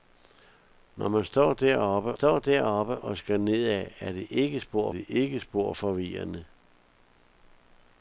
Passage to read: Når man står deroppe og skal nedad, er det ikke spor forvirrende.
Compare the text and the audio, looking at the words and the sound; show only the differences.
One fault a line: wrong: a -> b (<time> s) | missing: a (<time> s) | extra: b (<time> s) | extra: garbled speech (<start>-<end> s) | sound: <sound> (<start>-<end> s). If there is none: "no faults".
extra: står deroppe (2.1 s)
extra: det ikke spor (4.9 s)